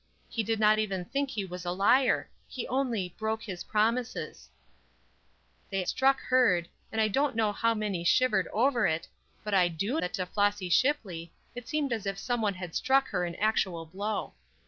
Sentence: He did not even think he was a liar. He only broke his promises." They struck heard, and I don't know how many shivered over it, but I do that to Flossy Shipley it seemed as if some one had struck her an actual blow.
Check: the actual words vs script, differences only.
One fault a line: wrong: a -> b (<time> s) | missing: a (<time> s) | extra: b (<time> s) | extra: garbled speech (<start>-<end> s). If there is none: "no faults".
no faults